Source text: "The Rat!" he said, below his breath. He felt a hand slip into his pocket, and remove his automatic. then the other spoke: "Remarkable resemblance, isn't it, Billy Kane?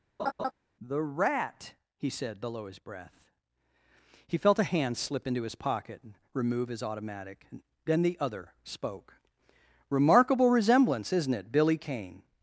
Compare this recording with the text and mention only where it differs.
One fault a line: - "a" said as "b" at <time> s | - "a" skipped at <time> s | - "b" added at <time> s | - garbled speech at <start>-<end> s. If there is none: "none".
none